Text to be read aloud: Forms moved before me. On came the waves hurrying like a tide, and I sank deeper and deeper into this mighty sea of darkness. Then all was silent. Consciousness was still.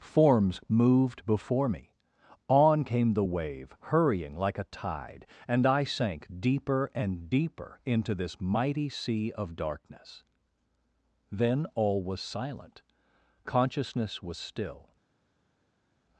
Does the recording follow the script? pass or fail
fail